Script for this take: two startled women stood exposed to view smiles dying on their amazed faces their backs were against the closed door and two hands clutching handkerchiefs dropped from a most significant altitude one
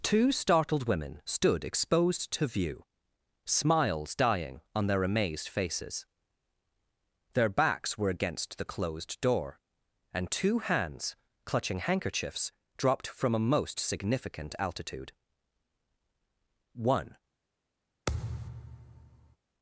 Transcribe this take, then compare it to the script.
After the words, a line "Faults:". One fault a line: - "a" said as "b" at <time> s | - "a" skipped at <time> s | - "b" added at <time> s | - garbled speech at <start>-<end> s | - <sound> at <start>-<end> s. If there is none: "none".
two startled women stood exposed to view smiles dying on their amazed faces their backs were against the closed door and two hands clutching handkerchiefs dropped from a most significant altitude one
Faults:
- thud at 18.1-19.4 s